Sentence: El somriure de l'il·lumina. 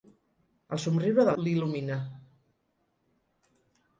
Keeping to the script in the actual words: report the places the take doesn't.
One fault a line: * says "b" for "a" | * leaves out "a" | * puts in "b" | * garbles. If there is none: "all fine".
all fine